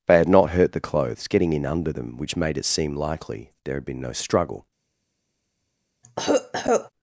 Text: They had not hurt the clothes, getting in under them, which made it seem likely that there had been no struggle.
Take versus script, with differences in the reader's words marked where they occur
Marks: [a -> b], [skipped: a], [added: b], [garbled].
They had not hurt the clothes, getting in under them, which made it seem likely [skipped: that] there had been no struggle.